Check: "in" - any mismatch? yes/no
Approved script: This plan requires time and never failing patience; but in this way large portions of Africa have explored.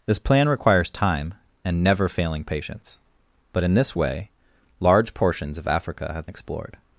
no